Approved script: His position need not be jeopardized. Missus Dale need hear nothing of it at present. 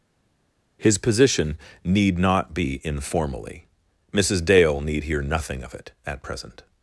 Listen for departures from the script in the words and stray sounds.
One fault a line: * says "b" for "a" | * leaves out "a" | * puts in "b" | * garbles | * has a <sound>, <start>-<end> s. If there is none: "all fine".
* says "informally" for "jeopardized"